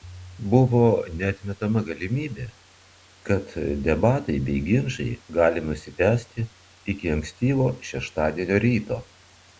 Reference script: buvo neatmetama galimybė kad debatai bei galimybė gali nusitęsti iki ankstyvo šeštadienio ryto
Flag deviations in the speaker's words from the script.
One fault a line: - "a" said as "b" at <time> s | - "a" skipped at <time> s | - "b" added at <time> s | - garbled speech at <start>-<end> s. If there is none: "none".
- "galimybė" said as "ginčai" at 4.7 s